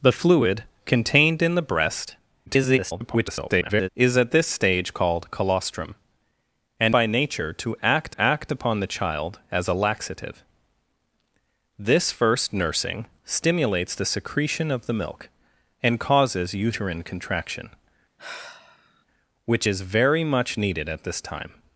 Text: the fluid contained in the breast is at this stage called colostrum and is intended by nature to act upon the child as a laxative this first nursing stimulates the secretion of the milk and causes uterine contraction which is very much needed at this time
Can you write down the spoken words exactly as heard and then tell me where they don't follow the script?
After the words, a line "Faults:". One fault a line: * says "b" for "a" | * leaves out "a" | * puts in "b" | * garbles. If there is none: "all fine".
the fluid contained in the breast [garbled] is at this stage called colostrum and by nature to act act upon the child as a laxative this first nursing stimulates the secretion of the milk and causes uterine contraction which is very much needed at this time
Faults:
* garbles
* leaves out "is intended"
* puts in "act"